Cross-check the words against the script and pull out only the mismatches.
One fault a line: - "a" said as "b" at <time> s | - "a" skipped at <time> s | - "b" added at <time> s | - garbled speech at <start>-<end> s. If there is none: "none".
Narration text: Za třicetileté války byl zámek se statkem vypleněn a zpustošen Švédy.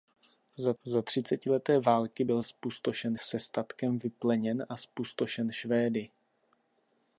- "za" added at 0.8 s
- "zámek" said as "zpustošen" at 2.4 s